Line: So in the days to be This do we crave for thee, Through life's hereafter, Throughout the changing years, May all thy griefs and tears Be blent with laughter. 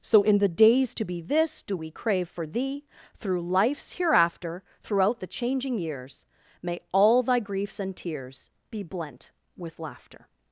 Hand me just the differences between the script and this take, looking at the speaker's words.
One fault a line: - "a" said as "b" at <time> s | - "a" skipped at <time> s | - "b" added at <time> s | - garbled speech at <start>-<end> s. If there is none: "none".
none